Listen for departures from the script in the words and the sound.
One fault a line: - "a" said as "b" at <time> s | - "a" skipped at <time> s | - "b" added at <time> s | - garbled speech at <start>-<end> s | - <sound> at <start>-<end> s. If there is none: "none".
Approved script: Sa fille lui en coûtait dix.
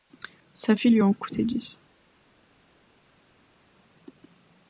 none